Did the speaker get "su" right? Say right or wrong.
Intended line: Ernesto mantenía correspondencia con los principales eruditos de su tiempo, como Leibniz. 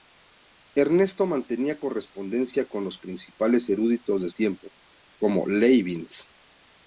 wrong